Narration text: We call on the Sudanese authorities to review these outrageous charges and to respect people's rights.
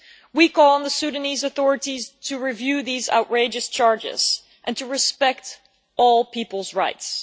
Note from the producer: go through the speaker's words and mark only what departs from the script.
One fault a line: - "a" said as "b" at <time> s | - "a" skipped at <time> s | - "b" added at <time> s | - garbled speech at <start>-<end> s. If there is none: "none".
- "all" added at 6.0 s